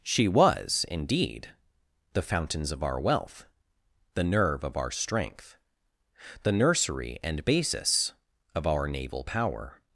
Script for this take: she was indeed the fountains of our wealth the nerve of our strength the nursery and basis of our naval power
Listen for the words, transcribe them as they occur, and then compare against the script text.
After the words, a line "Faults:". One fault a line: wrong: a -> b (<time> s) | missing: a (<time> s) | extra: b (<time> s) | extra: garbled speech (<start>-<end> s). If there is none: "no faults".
she was indeed the fountains of our wealth the nerve of our strength the nursery and basis of our naval power
Faults:
no faults